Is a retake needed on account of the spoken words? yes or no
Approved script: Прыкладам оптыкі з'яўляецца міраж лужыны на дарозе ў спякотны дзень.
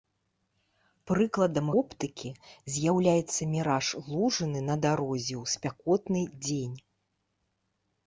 no